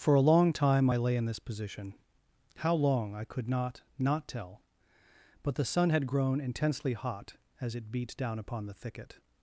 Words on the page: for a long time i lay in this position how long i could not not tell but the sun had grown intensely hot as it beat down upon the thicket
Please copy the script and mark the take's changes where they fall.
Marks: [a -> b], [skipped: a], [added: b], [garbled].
for a long time i lay in this position how long i could not not tell but the sun had grown intensely hot as it beat down upon the thicket